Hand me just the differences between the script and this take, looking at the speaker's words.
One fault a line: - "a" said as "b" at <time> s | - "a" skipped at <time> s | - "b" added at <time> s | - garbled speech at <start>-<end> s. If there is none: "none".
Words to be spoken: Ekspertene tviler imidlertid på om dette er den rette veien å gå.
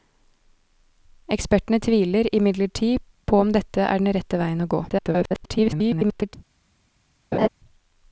- garbled speech at 4.9-6.4 s